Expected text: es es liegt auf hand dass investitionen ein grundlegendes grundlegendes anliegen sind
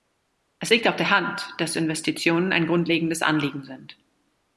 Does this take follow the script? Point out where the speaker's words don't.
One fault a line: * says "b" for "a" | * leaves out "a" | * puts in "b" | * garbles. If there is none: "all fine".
* leaves out "es"
* puts in "der"
* leaves out "grundlegendes"